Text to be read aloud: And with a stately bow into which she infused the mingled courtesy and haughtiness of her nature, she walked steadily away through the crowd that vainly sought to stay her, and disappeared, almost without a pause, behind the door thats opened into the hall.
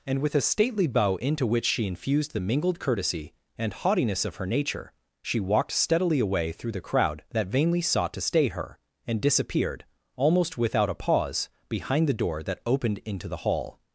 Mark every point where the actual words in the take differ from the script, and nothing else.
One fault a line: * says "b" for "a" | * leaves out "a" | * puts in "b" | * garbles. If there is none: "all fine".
* says "that" for "thats"